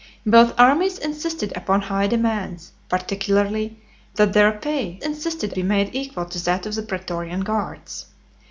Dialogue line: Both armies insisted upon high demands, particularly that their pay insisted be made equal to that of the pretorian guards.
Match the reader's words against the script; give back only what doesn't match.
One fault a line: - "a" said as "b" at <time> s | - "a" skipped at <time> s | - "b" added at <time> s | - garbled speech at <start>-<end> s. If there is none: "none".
none